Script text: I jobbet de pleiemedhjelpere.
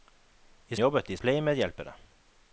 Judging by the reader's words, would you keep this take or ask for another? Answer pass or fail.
pass